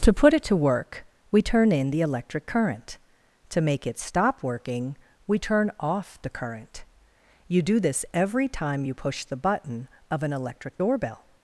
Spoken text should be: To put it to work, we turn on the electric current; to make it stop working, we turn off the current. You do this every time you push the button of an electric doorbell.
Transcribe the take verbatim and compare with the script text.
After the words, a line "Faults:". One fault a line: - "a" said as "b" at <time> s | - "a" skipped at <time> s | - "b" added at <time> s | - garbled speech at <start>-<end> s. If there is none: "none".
To put it to work, we turn in the electric current; to make it stop working, we turn off the current. You do this every time you push the button of an electric doorbell.
Faults:
- "on" said as "in" at 1.7 s